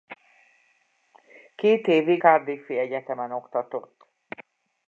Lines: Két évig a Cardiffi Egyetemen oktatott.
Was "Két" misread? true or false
false